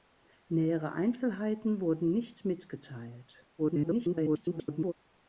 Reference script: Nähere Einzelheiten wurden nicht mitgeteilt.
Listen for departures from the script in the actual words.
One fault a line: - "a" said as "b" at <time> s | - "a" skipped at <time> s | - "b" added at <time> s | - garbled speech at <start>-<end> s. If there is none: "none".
- garbled speech at 3.6-4.9 s